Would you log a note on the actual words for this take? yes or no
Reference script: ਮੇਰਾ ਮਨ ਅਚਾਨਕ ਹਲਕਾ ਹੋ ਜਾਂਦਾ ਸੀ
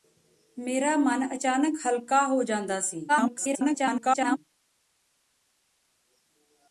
yes